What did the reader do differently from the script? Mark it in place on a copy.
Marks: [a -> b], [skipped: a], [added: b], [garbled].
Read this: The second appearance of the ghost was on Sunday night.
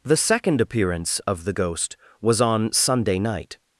The second appearance of the ghost was on Sunday night.